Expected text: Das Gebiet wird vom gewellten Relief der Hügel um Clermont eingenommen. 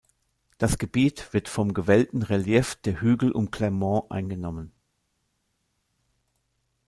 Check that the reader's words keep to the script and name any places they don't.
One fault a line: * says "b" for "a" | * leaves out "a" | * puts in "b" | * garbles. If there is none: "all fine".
all fine